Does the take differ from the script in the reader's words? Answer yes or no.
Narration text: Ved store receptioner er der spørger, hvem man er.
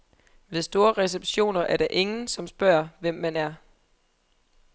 yes